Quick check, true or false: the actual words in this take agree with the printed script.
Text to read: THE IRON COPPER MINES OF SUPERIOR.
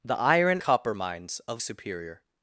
true